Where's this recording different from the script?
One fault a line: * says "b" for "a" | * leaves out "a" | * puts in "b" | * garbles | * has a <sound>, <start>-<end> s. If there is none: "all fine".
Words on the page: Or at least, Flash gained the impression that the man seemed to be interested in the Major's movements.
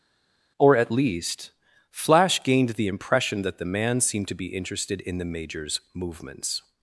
all fine